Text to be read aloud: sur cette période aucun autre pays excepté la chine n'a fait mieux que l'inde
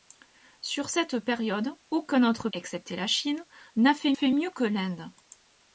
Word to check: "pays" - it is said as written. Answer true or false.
false